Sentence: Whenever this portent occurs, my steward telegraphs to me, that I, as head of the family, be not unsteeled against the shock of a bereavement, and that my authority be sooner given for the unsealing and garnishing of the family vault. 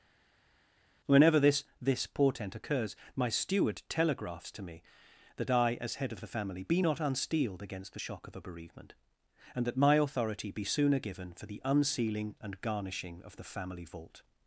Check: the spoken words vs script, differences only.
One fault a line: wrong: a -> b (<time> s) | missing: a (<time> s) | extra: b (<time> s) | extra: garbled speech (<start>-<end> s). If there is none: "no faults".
extra: this (1.8 s)